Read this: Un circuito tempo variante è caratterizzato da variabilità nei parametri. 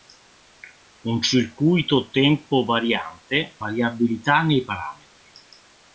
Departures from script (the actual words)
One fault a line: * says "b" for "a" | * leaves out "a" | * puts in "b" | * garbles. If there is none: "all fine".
* leaves out "è caratterizzato da"